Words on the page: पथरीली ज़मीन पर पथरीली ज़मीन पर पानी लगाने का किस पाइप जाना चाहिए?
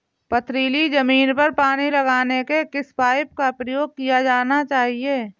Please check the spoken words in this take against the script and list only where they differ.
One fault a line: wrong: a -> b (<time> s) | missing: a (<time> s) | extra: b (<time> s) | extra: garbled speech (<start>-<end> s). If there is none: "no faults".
wrong: पथरीली ज़मीन पर पानी लगाने -> पानी लगाने के किस पाइप (1.5 s)
wrong: किस पाइप -> प्रयोग किया (3.5 s)